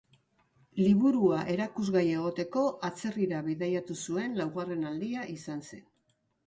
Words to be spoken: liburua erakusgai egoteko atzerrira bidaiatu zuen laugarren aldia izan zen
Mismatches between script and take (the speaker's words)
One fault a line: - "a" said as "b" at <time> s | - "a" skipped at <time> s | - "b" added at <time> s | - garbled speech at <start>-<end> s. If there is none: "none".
none